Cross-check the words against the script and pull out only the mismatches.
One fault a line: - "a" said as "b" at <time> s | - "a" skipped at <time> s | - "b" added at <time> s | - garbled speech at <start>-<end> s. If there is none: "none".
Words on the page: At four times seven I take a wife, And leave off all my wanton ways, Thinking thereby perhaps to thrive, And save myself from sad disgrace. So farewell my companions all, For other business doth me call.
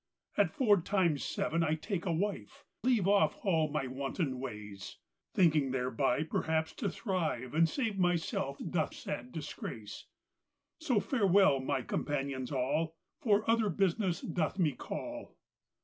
- "And" skipped at 2.6 s
- "from" said as "doth" at 8.6 s